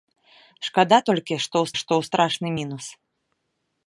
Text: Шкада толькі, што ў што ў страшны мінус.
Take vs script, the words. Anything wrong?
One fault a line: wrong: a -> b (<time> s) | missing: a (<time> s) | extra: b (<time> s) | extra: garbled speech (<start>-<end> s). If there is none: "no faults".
no faults